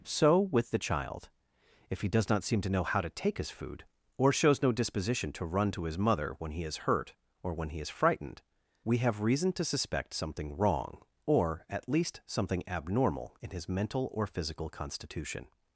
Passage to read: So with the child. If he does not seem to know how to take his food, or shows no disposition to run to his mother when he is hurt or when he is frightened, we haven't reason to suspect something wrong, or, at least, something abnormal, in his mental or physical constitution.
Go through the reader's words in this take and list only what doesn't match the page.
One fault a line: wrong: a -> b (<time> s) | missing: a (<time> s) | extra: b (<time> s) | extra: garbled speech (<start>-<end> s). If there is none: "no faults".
wrong: haven't -> have (9.0 s)